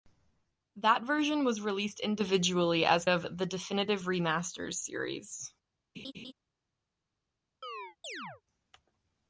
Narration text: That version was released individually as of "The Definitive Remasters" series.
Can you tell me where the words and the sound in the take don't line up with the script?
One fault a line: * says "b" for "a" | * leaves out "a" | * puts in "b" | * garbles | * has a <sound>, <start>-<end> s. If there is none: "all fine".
* has a laugh, 5.9-6.3 s
* has a chirp, 7.6-8.4 s